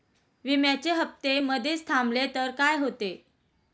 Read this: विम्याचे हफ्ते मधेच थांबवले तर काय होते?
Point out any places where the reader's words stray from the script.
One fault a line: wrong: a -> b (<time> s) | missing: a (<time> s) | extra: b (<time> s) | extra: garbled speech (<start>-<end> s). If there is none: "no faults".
no faults